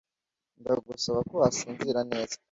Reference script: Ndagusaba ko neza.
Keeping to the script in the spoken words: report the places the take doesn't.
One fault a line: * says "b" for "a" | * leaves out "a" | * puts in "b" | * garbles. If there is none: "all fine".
* puts in "wasinzira"